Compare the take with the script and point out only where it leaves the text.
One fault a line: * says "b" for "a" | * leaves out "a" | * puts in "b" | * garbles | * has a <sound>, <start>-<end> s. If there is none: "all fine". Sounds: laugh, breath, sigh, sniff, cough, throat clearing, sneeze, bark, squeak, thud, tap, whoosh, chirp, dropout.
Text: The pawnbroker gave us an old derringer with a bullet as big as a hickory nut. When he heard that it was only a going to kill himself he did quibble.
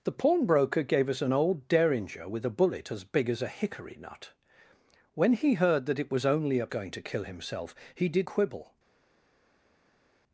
all fine